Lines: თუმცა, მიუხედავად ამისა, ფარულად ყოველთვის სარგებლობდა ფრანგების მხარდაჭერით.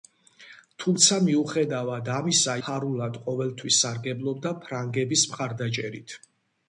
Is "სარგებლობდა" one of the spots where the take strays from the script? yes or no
no